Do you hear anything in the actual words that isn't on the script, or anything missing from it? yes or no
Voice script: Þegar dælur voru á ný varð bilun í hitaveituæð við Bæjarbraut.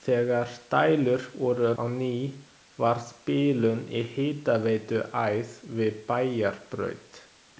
no